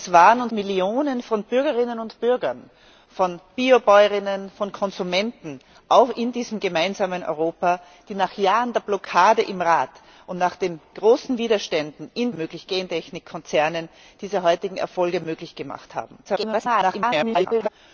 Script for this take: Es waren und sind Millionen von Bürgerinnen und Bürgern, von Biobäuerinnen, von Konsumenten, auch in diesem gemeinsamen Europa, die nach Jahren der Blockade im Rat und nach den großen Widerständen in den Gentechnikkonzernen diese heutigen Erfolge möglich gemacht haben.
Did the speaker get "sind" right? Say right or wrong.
wrong